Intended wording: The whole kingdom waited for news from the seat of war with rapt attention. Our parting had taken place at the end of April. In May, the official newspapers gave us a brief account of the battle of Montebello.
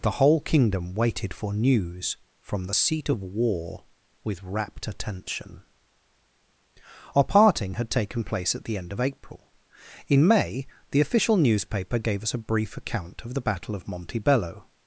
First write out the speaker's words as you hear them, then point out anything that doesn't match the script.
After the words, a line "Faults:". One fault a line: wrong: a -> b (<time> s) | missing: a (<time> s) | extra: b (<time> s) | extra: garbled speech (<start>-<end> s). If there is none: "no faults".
The whole kingdom waited for news from the seat of war with rapt attention. Our parting had taken place at the end of April. In May, the official newspaper gave us a brief account of the battle of Montebello.
Faults:
wrong: newspapers -> newspaper (11.4 s)